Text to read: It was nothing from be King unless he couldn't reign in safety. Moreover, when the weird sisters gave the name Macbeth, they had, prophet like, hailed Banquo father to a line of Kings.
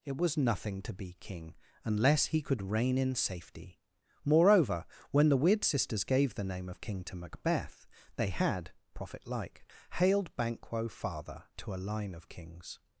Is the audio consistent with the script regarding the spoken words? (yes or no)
no